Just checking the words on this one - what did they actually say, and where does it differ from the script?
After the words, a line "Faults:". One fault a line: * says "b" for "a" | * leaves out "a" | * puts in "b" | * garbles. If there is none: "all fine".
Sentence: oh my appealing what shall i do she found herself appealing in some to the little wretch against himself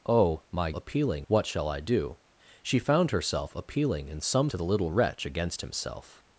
oh my appealing what shall i do she found herself appealing in some to the little wretch against himself
Faults:
all fine